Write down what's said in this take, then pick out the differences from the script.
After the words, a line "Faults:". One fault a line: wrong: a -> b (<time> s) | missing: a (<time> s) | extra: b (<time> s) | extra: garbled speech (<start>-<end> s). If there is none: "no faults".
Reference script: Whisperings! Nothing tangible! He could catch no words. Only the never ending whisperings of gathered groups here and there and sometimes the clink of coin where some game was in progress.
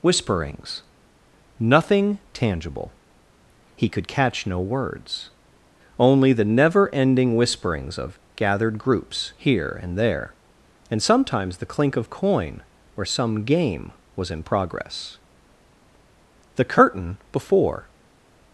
Whisperings! Nothing tangible! He could catch no words. Only the never ending whisperings of gathered groups here and there and sometimes the clink of coin where some game was in progress. The curtain before
Faults:
extra: The curtain before (16.5 s)